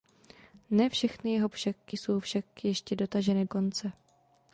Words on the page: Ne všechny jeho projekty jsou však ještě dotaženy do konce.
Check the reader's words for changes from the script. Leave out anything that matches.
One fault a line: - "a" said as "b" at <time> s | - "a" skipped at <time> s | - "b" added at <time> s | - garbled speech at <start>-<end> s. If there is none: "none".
- "projekty" said as "však" at 1.5 s
- "do" skipped at 3.4 s